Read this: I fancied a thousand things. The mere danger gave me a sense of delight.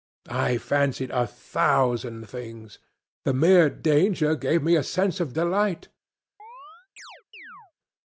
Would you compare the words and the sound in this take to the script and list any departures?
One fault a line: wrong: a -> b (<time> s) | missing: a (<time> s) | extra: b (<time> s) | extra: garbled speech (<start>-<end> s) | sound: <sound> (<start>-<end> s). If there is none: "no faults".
sound: chirp (6.4-7.7 s)